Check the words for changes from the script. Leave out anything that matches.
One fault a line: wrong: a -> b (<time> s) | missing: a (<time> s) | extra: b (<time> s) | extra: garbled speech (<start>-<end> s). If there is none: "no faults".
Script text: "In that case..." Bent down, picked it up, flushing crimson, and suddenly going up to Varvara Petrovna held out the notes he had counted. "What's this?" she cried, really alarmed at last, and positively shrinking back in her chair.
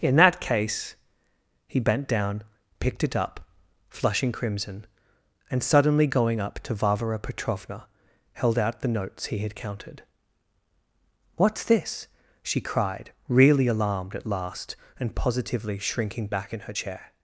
extra: He (1.7 s)